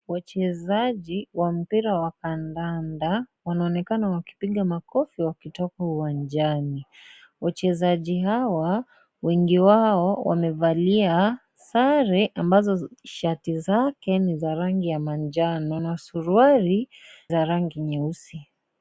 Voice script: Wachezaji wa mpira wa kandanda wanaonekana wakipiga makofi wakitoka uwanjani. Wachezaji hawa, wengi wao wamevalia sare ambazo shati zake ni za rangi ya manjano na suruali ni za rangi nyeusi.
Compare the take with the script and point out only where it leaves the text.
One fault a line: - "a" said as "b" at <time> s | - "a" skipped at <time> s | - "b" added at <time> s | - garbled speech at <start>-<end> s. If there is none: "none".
- "ni" skipped at 16.9 s